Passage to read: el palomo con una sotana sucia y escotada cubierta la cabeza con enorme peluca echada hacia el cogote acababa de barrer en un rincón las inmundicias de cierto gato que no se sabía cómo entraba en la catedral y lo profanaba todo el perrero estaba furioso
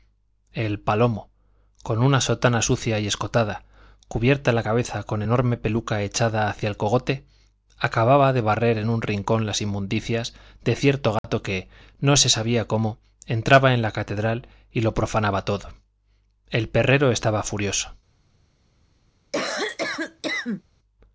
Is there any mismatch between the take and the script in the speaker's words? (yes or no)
no